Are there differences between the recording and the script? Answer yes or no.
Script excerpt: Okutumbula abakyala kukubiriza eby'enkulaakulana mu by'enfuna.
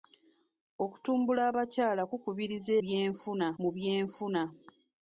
yes